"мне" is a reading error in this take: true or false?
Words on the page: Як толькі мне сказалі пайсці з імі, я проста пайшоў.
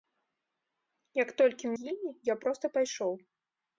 true